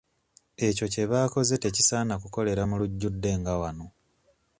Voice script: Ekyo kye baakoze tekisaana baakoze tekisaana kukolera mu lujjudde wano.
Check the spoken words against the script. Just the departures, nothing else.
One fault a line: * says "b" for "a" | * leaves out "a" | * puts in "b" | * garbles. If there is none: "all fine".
* leaves out "baakoze tekisaana"
* puts in "nga"